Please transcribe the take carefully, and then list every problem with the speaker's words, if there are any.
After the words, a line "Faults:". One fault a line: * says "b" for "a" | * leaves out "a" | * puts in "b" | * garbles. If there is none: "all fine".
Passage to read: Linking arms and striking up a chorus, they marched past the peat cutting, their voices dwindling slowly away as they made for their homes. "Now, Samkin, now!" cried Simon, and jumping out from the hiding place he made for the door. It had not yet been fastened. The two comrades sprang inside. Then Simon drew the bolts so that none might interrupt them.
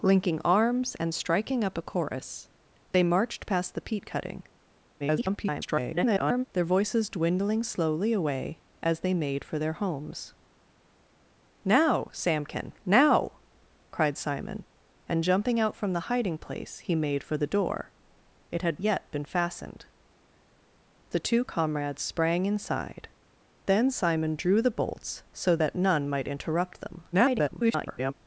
Linking arms and striking up a chorus, they marched past the peat cutting, [garbled] their voices dwindling slowly away as they made for their homes. "Now, Samkin, now!" cried Simon, and jumping out from the hiding place he made for the door. It had yet been fastened. The two comrades sprang inside. Then Simon drew the bolts so that none might interrupt them. [garbled]
Faults:
* garbles
* leaves out "not"
* garbles